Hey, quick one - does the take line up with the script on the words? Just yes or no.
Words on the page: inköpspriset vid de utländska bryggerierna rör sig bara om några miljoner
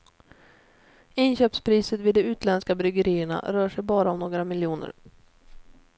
yes